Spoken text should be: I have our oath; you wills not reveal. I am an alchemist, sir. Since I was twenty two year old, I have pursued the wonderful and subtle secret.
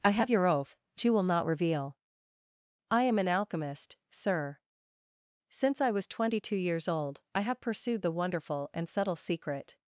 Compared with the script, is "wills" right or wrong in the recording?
wrong